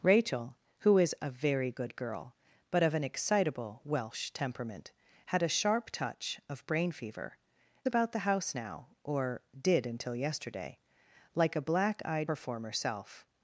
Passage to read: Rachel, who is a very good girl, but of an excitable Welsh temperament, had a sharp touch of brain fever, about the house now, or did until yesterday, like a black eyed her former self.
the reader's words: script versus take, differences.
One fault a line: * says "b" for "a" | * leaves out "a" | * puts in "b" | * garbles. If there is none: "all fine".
all fine